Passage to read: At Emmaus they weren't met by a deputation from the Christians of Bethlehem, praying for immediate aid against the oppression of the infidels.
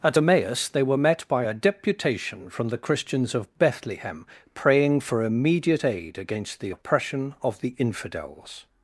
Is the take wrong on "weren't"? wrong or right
wrong